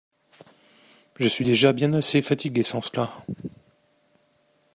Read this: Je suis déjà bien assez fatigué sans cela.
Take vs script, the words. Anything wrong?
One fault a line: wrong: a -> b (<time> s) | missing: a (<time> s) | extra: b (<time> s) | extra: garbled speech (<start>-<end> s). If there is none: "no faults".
no faults